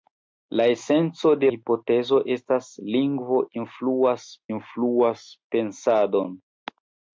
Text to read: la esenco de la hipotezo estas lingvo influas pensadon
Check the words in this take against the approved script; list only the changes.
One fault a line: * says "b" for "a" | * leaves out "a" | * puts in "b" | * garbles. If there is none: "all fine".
* leaves out "la"
* puts in "influas"